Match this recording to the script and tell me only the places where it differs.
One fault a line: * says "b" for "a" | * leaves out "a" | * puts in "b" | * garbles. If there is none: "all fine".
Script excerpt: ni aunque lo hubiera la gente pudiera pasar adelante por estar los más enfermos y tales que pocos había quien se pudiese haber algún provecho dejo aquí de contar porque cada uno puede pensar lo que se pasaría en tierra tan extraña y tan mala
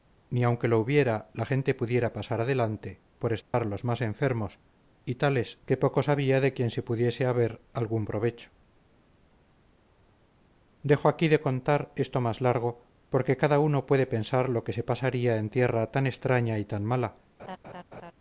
* puts in "de"
* puts in "esto más largo"